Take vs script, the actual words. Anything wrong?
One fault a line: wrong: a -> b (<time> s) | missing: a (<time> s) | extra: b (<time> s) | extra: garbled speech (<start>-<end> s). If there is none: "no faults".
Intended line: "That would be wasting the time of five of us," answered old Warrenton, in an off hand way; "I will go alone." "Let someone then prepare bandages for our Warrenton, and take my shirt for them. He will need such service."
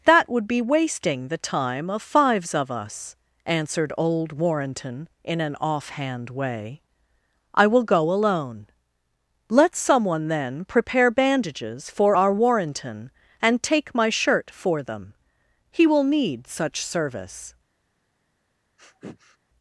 wrong: five -> fives (2.0 s)